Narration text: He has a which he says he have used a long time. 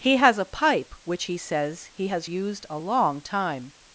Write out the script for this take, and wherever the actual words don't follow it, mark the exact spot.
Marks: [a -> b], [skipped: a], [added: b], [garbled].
He has a [added: pipe] which he says he [have -> has] used a long time.